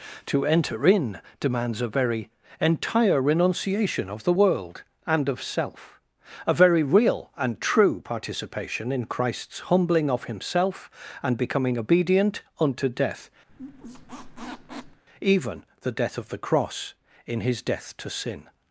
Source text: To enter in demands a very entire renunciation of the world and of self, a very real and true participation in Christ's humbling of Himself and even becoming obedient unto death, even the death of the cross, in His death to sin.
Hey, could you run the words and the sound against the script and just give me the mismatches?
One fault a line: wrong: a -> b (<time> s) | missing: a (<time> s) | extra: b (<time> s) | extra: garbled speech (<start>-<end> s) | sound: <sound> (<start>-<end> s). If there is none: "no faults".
missing: even (11.4 s)
sound: squeak (13.5-15.0 s)